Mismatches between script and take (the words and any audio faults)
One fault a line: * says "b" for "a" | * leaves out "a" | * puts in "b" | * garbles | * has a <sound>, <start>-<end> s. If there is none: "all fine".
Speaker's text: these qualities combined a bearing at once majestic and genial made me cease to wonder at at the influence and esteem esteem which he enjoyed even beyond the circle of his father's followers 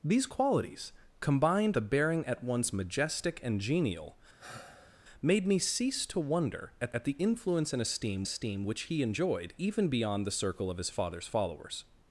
* has a sigh, 4.4-5.0 s